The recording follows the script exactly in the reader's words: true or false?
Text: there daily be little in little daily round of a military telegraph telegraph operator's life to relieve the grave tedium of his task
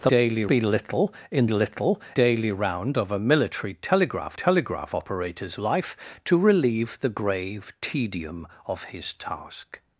true